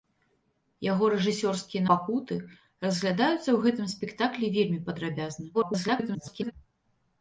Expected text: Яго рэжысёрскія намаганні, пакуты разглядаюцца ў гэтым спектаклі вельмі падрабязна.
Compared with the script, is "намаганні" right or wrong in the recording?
wrong